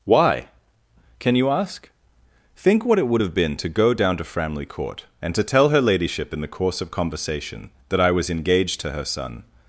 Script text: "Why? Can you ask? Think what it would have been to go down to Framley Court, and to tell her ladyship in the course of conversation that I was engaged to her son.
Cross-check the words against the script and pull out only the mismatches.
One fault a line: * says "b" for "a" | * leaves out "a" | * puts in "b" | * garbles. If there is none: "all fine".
all fine